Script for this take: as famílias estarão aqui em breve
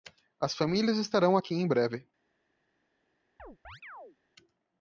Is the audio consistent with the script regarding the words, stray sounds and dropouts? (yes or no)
no